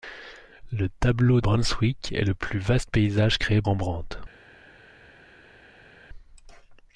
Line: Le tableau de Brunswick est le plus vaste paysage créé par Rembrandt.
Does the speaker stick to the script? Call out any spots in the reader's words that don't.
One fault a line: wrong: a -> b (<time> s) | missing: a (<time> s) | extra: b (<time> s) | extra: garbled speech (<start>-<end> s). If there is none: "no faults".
missing: de (1.4 s)
missing: par (3.6 s)